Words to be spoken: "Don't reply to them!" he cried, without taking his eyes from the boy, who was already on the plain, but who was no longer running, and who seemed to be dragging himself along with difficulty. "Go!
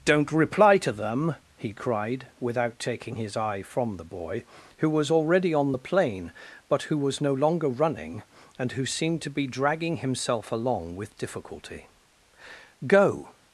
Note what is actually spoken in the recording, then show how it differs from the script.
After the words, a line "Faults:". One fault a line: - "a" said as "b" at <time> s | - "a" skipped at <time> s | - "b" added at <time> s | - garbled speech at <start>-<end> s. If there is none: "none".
"Don't reply to them!" he cried, without taking his eye from the boy, who was already on the plain, but who was no longer running, and who seemed to be dragging himself along with difficulty. "Go!
Faults:
- "eyes" said as "eye" at 3.4 s